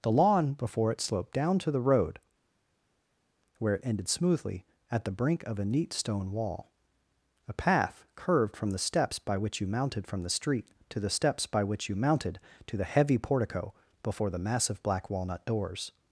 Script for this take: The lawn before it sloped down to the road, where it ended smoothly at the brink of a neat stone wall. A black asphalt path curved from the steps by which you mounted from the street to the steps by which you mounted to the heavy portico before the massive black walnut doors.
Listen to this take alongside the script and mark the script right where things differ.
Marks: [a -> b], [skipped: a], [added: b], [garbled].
The lawn before it sloped down to the road, where it ended smoothly at the brink of a neat stone wall. A [skipped: black asphalt] path curved from the steps by which you mounted from the street to the steps by which you mounted to the heavy portico before the massive black walnut doors.